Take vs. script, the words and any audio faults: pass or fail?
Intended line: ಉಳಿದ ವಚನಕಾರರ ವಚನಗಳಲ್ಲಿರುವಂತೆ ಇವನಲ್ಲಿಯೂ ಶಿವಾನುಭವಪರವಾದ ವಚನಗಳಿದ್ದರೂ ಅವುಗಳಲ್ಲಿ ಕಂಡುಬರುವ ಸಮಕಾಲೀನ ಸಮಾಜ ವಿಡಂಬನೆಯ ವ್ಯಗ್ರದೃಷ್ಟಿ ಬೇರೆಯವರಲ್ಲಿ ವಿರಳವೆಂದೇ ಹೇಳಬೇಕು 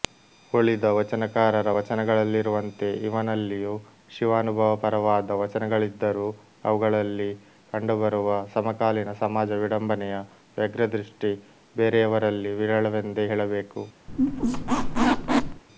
fail